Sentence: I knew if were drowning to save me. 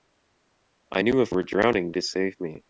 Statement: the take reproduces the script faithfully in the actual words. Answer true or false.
true